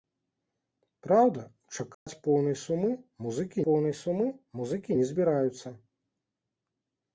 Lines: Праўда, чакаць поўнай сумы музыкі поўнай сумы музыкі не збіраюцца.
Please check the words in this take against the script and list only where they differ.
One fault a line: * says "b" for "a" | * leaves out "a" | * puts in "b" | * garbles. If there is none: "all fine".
all fine